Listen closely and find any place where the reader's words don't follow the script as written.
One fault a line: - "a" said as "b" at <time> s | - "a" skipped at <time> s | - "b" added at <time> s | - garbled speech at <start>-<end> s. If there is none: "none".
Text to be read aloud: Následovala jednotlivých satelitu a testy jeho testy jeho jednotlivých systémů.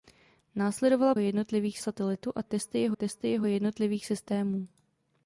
none